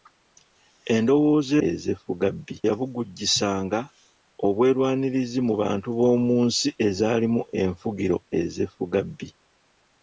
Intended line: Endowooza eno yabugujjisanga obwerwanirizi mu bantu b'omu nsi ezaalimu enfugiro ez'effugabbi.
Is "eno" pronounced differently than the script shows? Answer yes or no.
yes